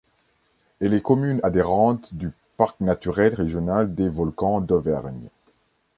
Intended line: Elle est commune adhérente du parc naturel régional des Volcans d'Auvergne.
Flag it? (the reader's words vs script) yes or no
no